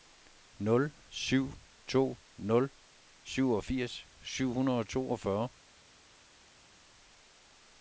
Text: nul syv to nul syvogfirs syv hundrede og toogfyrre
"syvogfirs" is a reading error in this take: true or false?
false